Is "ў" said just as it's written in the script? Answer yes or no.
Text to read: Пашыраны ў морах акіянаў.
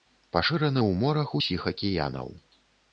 yes